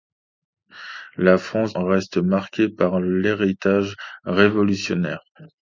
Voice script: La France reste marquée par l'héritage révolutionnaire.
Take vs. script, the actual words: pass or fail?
pass